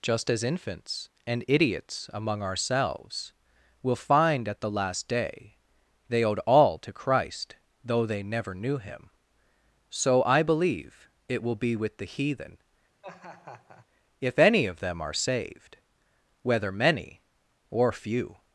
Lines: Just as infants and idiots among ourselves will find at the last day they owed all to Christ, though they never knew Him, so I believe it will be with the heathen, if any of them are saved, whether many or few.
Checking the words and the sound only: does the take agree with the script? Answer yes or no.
no